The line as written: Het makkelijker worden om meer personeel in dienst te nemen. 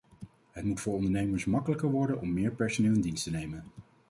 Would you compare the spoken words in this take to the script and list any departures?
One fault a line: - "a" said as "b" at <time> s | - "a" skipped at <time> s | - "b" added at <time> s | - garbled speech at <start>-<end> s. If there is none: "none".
- "moet voor ondernemers" added at 0.6 s